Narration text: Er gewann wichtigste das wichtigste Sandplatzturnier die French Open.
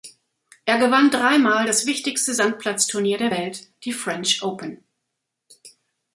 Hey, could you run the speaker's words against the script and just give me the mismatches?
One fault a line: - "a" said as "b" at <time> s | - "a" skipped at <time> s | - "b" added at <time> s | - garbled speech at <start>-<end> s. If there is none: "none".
- "wichtigste" said as "dreimal" at 1.1 s
- "der Welt" added at 3.2 s